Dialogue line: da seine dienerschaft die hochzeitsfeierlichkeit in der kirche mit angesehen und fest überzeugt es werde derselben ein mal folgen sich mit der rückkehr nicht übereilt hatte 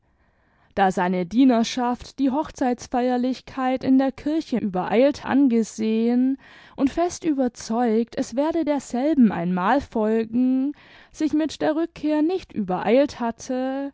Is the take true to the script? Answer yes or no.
no